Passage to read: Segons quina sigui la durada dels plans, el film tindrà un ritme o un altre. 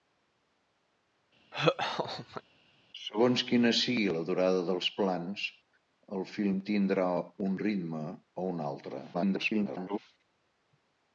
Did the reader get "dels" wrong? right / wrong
right